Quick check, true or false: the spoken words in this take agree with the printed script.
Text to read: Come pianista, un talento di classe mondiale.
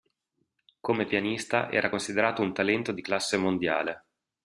false